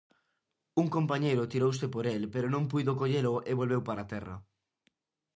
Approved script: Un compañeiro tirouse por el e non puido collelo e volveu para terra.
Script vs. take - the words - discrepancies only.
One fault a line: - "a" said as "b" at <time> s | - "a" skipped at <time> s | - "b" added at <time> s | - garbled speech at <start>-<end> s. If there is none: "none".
- "e" said as "pero" at 2.3 s